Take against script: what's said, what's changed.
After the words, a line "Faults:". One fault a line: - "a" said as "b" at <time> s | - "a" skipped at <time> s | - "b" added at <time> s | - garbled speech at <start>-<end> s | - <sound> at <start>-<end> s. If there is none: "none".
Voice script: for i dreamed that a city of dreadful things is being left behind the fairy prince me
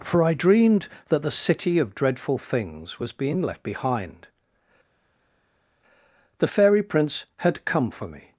for i dreamed that the city of dreadful things was being left behind the fairy prince had come for me
Faults:
- "a" said as "the" at 1.2 s
- "is" said as "was" at 3.0 s
- "had come for" added at 7.4 s